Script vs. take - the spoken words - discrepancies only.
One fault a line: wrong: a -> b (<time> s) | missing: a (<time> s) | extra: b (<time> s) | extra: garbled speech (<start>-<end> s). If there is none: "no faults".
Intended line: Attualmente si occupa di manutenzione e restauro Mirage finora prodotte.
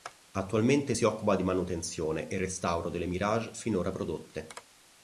extra: delle (2.9 s)